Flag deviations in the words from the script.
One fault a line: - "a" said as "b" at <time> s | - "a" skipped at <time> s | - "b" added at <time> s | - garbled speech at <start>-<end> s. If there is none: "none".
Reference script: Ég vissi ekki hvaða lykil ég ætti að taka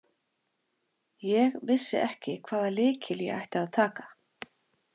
none